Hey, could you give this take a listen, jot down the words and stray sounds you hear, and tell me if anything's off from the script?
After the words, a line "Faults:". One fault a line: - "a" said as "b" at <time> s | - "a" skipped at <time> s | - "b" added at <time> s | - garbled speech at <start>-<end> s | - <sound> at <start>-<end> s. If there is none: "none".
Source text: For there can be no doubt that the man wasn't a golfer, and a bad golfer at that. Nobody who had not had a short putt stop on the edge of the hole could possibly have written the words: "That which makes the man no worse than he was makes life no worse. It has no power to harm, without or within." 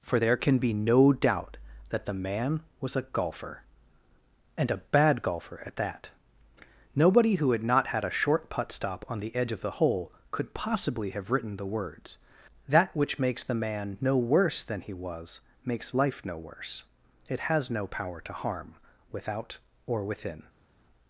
For there can be no doubt that the man was a golfer, and a bad golfer at that. Nobody who had not had a short putt stop on the edge of the hole could possibly have written the words: "That which makes the man no worse than he was makes life no worse. It has no power to harm, without or within."
Faults:
- "wasn't" said as "was" at 2.8 s